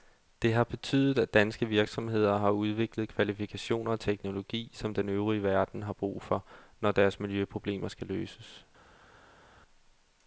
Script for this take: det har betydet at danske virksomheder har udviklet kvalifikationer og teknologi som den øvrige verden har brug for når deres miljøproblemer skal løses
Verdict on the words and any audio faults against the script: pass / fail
pass